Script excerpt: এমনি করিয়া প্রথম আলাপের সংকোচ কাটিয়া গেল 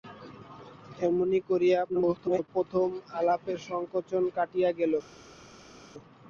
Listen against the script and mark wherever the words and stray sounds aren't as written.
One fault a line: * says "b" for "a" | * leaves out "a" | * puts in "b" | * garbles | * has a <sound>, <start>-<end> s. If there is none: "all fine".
* garbles